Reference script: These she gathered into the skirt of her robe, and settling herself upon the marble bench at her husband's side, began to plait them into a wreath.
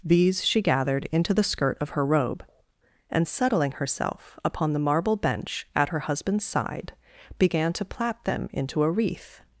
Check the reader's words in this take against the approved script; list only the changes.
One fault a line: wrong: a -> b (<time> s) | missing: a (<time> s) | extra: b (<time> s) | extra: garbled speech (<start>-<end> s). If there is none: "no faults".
no faults